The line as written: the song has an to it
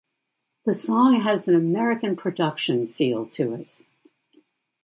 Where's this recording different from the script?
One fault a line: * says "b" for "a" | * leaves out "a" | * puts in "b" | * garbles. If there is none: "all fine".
* puts in "american production feel"